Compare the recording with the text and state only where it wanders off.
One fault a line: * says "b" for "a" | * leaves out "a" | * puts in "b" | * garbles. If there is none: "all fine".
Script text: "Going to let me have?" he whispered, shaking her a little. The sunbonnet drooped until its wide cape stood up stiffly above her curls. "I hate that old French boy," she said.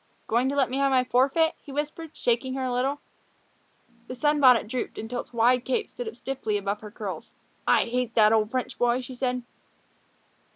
* puts in "my forfeit"